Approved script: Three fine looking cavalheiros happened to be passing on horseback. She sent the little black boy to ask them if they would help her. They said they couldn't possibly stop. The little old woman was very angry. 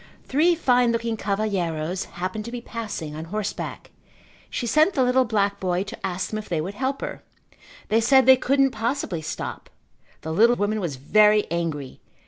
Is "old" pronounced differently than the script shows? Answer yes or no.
yes